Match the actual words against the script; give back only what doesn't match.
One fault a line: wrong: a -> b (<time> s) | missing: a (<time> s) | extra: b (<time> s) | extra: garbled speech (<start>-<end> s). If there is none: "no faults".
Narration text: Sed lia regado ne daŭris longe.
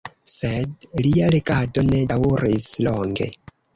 no faults